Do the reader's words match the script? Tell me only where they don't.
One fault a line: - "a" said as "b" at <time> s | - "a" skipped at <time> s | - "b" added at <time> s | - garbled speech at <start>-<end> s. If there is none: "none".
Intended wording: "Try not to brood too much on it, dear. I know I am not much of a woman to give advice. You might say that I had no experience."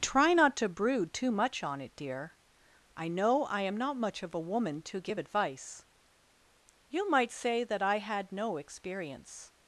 none